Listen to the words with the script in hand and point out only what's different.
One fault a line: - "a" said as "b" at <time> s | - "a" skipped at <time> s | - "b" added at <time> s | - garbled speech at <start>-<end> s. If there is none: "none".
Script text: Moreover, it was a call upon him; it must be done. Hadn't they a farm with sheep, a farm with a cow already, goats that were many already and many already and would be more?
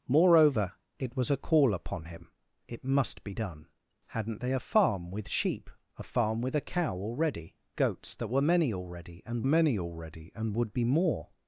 none